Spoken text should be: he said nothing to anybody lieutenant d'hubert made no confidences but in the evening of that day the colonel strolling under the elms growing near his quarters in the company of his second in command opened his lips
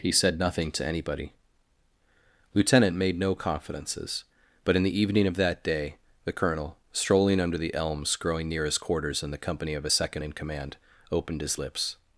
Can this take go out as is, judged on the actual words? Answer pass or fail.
fail